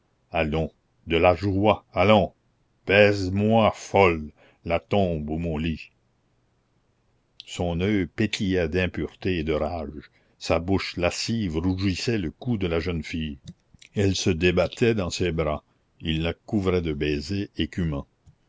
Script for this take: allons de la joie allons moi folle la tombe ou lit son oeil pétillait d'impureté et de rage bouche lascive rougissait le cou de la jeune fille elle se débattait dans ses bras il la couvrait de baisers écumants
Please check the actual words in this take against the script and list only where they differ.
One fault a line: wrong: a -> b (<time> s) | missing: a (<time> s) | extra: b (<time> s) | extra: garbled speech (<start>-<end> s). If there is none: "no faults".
extra: baise (2.9 s)
extra: mon (5.4 s)
extra: sa (10.4 s)